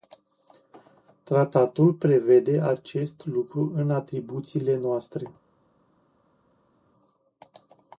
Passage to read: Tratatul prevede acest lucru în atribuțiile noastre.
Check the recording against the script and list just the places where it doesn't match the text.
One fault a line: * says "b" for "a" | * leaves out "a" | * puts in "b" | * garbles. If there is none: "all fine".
all fine